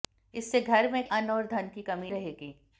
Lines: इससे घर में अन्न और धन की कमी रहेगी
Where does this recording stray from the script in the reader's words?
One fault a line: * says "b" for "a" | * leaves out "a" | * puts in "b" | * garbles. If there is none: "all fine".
all fine